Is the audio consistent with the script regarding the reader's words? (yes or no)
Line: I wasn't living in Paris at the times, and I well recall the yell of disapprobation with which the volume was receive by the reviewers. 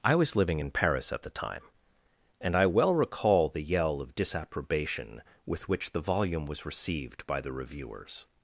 no